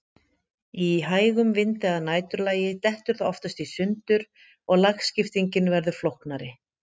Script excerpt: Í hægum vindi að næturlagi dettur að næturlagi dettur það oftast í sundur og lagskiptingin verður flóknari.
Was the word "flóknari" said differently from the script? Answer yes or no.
no